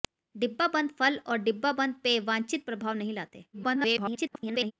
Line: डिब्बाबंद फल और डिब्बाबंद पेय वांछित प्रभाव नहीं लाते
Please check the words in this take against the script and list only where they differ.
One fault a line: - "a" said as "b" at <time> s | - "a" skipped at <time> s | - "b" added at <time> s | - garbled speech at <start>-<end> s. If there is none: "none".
- garbled speech at 3.5-4.7 s